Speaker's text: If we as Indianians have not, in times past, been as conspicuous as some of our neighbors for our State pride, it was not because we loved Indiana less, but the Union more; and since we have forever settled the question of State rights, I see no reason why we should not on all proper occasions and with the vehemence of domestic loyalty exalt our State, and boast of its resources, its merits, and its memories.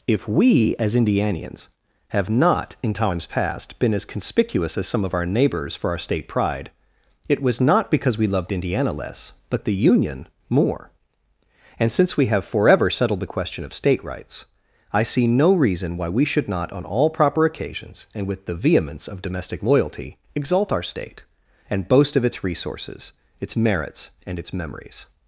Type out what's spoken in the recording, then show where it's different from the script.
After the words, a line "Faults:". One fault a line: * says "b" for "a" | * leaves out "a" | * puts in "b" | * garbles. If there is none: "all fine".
If we as Indianians have not, in times past, been as conspicuous as some of our neighbors for our State pride, it was not because we loved Indiana less, but the Union more; and since we have forever settled the question of State rights, I see no reason why we should not on all proper occasions and with the vehemence of domestic loyalty exalt our State, and boast of its resources, its merits, and its memories.
Faults:
all fine